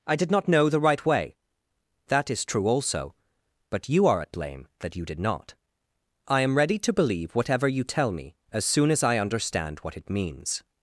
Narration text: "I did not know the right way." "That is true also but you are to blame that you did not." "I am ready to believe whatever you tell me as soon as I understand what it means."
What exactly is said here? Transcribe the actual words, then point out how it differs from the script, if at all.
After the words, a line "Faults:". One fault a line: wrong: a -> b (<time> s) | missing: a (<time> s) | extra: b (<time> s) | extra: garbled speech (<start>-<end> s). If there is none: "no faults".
"I did not know the right way." "That is true also but you are at blame that you did not." "I am ready to believe whatever you tell me as soon as I understand what it means."
Faults:
wrong: to -> at (4.2 s)